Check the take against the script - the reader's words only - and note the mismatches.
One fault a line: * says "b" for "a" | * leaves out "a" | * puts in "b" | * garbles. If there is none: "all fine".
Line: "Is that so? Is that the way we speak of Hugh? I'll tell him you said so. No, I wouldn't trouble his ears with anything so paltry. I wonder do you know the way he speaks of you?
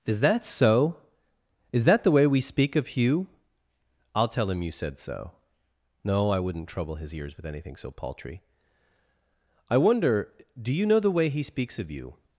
all fine